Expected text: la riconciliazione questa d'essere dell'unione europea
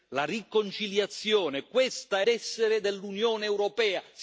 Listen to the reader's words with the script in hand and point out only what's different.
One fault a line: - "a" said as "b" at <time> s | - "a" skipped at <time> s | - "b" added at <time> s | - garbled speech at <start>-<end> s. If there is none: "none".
none